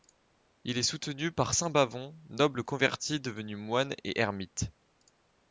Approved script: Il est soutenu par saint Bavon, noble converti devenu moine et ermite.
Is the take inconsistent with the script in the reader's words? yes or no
no